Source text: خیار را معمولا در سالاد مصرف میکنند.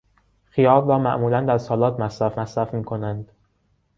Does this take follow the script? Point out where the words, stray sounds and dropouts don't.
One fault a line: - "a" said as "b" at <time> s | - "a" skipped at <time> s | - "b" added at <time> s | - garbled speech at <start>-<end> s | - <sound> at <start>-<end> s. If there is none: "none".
- "مصرف" added at 2.4 s